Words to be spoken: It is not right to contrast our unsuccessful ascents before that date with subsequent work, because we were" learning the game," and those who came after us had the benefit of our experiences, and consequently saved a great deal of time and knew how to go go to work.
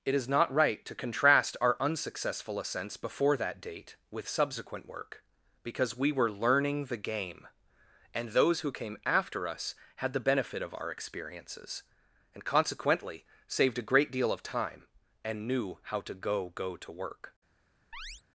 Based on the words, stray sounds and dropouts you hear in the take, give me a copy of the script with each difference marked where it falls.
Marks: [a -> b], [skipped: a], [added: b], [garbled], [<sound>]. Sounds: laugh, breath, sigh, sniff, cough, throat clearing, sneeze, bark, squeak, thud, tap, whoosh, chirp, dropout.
It is not right to contrast our unsuccessful ascents before that date with subsequent work, because we were" learning the game," and those who came after us had the benefit of our experiences, and consequently saved a great deal of time and knew how to go go to work. [chirp]